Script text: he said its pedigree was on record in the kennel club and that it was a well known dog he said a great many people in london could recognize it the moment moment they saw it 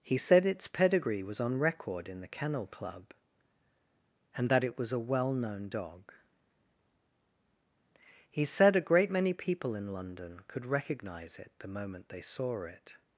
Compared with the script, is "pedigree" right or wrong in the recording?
right